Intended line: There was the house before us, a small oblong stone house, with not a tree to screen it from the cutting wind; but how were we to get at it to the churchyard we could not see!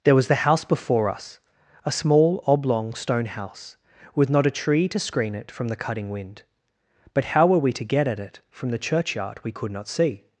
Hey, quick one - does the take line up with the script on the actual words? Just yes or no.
no